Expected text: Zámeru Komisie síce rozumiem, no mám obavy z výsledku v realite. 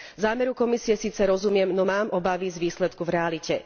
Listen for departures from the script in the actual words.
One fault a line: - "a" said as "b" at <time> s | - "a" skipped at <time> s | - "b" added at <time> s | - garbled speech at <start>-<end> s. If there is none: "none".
none